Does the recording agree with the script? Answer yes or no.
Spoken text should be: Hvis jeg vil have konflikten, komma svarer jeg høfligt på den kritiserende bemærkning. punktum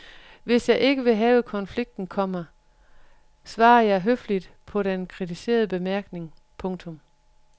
no